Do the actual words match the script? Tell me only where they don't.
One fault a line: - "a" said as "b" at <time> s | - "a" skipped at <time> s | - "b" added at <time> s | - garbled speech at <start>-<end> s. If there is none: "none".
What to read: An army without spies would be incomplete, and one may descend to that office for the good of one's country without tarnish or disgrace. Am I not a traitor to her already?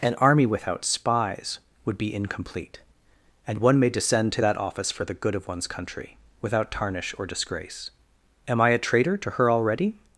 - "not" skipped at 8.7 s